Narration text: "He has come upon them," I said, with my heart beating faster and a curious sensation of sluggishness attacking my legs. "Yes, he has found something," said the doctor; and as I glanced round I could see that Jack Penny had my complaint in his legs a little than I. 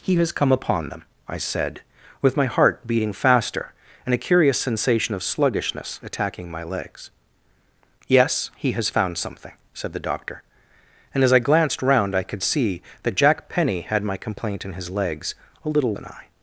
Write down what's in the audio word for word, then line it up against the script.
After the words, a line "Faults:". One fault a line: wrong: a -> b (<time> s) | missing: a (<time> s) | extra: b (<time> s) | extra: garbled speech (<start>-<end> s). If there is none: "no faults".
"He has come upon them," I said, with my heart beating faster and a curious sensation of sluggishness attacking my legs. "Yes, he has found something," said the doctor; and as I glanced round I could see that Jack Penny had my complaint in his legs a little than I.
Faults:
no faults